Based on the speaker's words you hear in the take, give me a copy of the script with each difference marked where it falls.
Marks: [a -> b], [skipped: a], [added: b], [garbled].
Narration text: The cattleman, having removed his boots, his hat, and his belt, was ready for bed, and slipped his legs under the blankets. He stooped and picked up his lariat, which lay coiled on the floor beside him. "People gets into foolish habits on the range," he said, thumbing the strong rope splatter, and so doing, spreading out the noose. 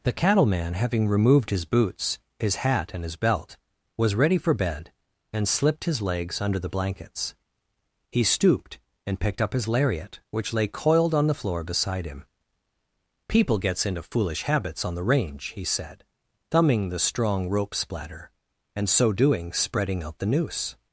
The cattleman, having removed his boots, his hat, and his belt, was ready for bed, and slipped his legs under the blankets. He stooped and picked up his lariat, which lay coiled on the floor beside him. "People gets into foolish habits on the range," he said, thumbing the strong rope splatter, and so doing, spreading out the noose.